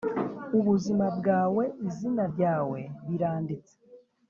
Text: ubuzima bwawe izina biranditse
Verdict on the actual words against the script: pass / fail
fail